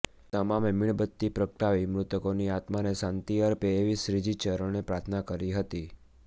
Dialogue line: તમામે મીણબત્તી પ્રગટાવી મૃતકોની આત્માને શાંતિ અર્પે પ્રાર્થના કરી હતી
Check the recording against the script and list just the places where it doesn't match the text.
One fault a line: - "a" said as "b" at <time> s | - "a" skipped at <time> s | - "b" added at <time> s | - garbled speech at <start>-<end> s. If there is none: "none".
- "એવી શ્રીજી ચરણે" added at 3.8 s